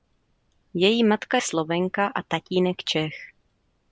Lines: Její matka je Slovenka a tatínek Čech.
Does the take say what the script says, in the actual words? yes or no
no